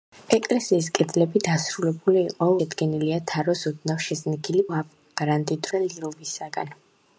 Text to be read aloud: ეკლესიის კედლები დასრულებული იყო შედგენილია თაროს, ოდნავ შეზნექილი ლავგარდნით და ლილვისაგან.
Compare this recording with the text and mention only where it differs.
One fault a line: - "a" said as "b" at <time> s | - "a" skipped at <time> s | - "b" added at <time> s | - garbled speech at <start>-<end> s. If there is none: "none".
none